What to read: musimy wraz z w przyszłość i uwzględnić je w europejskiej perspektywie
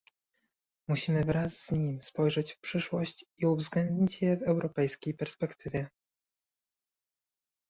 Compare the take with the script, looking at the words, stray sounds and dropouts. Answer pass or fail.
fail